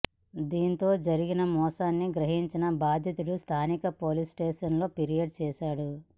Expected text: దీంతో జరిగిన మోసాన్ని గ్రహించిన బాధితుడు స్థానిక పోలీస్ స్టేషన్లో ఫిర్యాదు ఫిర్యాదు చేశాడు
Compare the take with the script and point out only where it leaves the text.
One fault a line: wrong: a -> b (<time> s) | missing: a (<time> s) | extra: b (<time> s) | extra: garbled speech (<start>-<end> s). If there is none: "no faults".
missing: ఫిర్యాదు (5.4 s)